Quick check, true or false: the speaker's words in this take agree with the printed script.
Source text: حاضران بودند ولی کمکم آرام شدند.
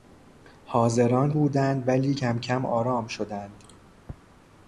true